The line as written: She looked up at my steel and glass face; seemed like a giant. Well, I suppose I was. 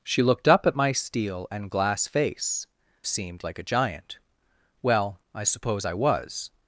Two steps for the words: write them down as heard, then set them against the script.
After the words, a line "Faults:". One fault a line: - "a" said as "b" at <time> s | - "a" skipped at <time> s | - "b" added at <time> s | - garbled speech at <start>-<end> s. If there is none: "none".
She looked up at my steel and glass face; seemed like a giant. Well, I suppose I was.
Faults:
none